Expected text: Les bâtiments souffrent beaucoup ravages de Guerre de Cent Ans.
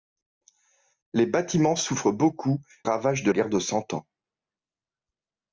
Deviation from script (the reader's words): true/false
false